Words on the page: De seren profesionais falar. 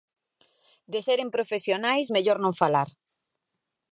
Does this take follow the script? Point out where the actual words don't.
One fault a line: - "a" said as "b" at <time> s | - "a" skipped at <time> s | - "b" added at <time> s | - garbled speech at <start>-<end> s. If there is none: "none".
- "mellor non" added at 2.1 s